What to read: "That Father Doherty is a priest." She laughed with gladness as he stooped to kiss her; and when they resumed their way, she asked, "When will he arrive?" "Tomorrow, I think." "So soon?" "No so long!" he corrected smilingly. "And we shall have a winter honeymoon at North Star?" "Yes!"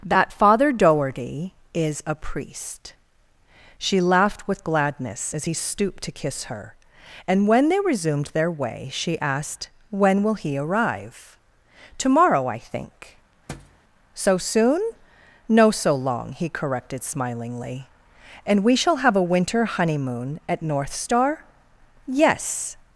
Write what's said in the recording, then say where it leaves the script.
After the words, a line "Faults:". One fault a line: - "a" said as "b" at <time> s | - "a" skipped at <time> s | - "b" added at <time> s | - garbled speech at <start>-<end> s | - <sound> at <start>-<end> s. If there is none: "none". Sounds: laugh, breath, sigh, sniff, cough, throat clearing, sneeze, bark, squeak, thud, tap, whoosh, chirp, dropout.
"That Father Doherty is a priest." She laughed with gladness as he stooped to kiss her; and when they resumed their way, she asked, "When will he arrive?" "Tomorrow, I think." "So soon?" "No so long!" he corrected smilingly. "And we shall have a winter honeymoon at North Star?" "Yes!"
Faults:
- thud at 13.5-13.8 s